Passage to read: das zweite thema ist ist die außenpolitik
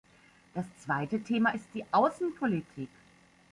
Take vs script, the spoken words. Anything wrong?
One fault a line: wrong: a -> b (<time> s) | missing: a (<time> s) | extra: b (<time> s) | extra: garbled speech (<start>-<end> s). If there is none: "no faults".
missing: ist (1.7 s)